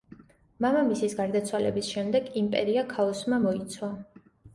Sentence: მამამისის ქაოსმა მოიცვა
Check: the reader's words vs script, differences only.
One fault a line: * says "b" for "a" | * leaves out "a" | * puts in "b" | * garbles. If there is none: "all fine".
* puts in "გარდაცვალების შემდეგ იმპერია"